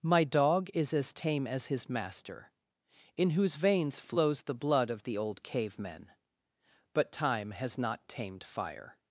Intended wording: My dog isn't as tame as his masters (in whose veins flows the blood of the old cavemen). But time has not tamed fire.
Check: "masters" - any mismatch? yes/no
yes